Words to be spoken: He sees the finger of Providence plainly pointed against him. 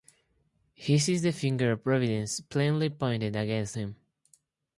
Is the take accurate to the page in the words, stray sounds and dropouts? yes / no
yes